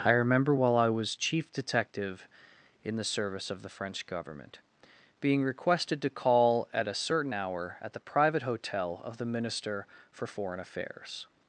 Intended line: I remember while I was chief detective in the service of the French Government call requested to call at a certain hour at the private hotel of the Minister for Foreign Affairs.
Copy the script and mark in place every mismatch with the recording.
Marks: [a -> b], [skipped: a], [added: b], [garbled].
I remember while I was chief detective in the service of the French Government [call -> being] requested to call at a certain hour at the private hotel of the Minister for Foreign Affairs.